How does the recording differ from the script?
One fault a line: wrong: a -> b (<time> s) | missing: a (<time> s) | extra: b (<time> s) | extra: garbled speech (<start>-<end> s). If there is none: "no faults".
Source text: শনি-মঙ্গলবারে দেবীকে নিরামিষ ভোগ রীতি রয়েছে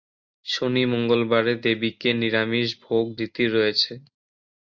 no faults